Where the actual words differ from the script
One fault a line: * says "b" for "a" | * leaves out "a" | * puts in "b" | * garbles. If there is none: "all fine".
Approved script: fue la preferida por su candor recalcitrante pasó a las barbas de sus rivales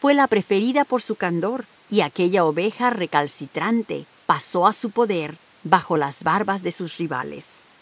* puts in "y aquella oveja"
* puts in "su poder bajo"